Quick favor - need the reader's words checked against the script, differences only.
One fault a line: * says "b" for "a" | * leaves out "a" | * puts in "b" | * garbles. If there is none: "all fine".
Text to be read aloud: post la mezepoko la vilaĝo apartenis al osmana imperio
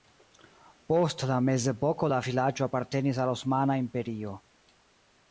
all fine